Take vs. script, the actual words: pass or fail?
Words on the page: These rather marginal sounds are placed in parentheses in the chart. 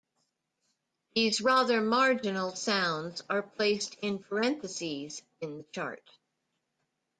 pass